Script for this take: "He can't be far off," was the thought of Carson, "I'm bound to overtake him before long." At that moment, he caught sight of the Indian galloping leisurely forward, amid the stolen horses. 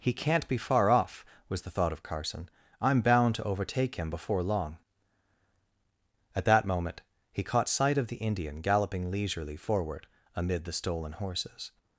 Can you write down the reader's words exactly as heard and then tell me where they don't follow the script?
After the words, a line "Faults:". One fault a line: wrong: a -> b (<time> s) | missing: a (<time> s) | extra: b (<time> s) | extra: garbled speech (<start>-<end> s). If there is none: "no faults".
"He can't be far off," was the thought of Carson, "I'm bound to overtake him before long." At that moment, he caught sight of the Indian galloping leisurely forward, amid the stolen horses.
Faults:
no faults